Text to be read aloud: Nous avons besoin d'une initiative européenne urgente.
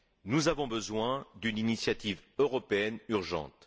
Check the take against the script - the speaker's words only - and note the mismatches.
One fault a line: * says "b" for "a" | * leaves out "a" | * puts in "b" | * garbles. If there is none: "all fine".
all fine